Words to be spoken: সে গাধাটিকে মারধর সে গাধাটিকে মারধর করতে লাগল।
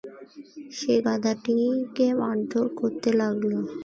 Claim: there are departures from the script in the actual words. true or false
true